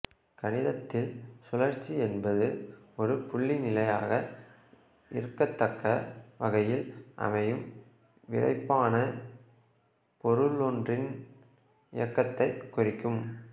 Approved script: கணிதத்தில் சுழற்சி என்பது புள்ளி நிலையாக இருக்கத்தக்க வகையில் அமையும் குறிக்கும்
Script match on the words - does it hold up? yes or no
no